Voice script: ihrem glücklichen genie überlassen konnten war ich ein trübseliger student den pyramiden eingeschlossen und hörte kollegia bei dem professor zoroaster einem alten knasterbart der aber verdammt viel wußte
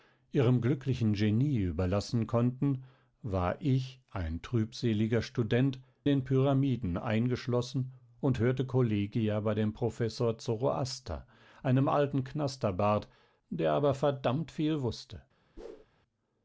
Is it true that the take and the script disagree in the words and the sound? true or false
true